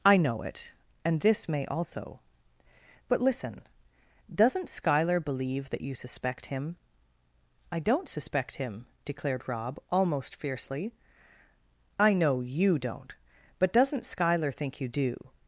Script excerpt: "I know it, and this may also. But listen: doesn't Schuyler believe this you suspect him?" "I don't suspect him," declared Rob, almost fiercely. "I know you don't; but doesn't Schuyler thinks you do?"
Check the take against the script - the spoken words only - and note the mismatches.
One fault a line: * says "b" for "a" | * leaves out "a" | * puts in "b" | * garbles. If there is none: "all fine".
* says "that" for "this"
* says "think" for "thinks"